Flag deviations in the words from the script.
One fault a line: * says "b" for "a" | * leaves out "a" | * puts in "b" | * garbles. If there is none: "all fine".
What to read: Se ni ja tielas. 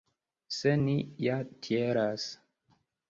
all fine